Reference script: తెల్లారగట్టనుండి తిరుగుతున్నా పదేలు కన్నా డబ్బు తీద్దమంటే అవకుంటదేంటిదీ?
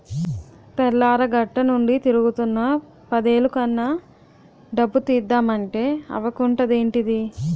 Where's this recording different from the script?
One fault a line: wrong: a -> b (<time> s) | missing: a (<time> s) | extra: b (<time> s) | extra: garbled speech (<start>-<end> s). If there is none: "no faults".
no faults